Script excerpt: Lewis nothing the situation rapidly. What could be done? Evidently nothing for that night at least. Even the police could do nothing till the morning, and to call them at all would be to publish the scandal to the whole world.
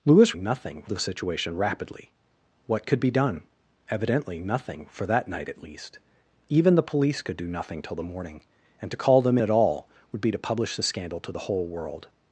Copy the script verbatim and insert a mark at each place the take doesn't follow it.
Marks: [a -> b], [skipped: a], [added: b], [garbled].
Lewis nothing the situation rapidly. What could be done? Evidently nothing for that night at least. Even the police could do nothing till the morning, and to call them at all would be to publish the scandal to the whole world.